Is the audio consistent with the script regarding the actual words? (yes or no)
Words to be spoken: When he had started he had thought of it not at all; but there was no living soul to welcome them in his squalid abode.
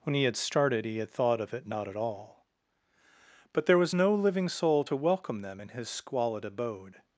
yes